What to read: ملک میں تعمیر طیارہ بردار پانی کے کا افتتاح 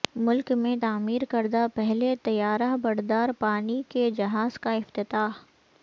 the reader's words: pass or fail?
fail